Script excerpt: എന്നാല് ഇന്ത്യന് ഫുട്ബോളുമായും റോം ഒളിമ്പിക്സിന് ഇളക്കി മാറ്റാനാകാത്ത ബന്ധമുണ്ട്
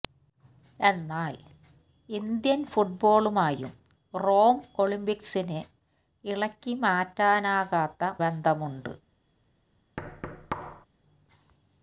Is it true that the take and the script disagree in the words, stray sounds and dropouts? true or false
true